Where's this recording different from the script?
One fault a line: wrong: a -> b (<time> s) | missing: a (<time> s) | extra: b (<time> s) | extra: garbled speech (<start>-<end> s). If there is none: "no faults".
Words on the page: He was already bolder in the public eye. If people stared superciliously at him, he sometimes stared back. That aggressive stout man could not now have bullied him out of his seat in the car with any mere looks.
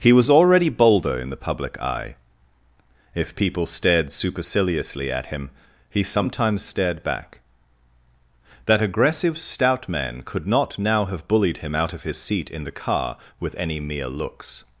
no faults